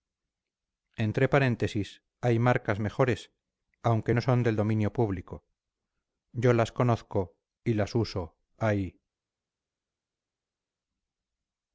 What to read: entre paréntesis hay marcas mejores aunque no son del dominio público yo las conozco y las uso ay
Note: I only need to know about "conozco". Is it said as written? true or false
true